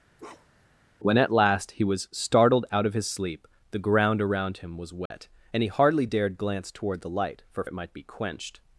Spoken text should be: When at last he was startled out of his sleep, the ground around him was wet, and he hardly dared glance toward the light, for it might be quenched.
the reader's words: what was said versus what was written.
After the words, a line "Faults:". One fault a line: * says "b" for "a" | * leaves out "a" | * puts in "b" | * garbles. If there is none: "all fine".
When at last he was startled out of his sleep, the ground around him was wet, and he hardly dared glance toward the light, for it might be quenched.
Faults:
all fine